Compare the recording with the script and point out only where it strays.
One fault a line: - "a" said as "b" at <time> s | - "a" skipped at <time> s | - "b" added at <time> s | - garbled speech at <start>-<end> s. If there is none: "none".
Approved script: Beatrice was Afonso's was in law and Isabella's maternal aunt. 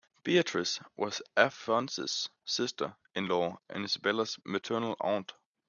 - "was" said as "sister" at 2.4 s